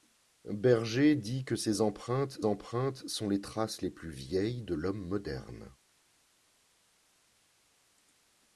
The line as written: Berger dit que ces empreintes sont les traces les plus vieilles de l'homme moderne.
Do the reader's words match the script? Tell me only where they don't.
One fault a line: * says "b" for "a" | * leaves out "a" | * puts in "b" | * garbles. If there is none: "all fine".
* puts in "empreintes"